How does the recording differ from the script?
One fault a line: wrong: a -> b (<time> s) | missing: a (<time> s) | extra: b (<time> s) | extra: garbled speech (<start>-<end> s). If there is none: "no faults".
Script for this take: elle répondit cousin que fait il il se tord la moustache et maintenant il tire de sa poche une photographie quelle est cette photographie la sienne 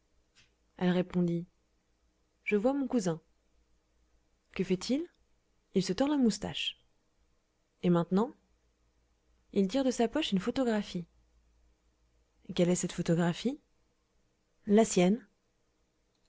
extra: je vois mon (2.4 s)